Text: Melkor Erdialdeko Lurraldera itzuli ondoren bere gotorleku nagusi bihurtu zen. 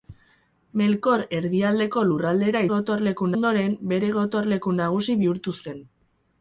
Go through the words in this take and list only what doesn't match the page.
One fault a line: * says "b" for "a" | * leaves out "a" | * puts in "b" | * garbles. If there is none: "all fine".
* says "gotorleku" for "itzuli"